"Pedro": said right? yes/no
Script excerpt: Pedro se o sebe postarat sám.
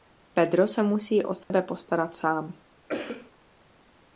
yes